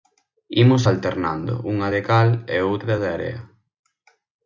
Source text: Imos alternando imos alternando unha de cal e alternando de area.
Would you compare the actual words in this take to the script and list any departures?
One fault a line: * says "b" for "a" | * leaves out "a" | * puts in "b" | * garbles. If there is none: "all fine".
* leaves out "imos alternando"
* says "outra" for "alternando"